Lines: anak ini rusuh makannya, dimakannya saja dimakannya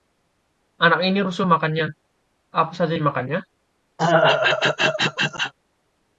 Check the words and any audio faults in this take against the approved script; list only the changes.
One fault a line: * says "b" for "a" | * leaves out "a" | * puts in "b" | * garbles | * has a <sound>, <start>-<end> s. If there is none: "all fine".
* says "apa" for "dimakannya"
* has a throat clearing, 4.0-5.5 s